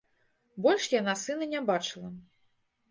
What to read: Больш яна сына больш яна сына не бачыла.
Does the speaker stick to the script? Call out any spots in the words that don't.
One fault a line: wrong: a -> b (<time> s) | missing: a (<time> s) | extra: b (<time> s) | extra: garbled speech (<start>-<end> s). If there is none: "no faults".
missing: больш яна сына (1.5 s)